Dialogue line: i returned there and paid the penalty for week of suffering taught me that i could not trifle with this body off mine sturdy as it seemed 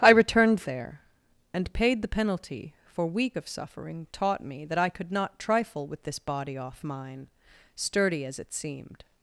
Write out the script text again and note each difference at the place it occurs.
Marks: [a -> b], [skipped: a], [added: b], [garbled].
i returned there and paid the penalty for week of suffering taught me that i could not trifle with this body off mine sturdy as it seemed